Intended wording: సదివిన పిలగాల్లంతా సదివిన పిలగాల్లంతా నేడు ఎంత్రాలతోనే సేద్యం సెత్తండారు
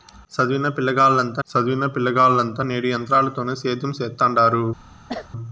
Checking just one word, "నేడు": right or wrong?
right